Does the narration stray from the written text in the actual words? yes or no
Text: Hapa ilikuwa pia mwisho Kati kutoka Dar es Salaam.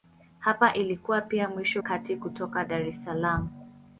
no